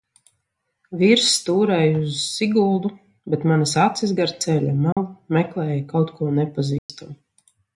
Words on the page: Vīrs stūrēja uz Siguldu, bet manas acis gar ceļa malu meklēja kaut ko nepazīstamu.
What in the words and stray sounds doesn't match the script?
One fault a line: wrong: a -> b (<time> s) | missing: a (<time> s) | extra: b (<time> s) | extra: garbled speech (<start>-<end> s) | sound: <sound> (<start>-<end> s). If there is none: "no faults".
sound: dropout (4.9-5.0 s)
sound: dropout (6.8-6.9 s)